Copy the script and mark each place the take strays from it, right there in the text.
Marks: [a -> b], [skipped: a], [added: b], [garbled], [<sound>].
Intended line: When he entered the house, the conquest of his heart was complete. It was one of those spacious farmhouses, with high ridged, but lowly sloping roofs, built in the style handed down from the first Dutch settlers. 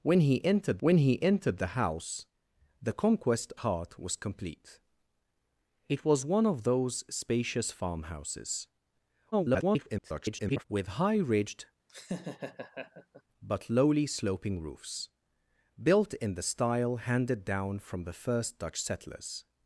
When he entered [added: when he entered] the house, the conquest [skipped: of his] heart was complete. It was one of those spacious farmhouses, [garbled] with high ridged, [laugh] but lowly sloping roofs, built in the style handed down from the first Dutch settlers.